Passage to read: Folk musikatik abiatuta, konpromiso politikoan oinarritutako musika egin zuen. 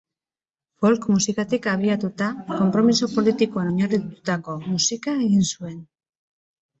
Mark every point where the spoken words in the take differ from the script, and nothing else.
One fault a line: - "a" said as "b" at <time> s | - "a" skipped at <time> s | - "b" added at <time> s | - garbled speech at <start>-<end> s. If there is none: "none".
none